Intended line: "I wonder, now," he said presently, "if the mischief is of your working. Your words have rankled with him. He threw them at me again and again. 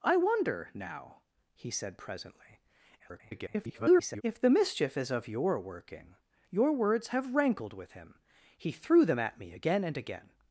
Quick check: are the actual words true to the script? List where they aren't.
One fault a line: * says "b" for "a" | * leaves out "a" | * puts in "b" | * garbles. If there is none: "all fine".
* garbles